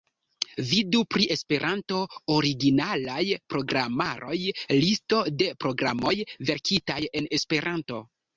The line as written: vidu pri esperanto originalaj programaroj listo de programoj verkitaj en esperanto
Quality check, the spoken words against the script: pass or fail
pass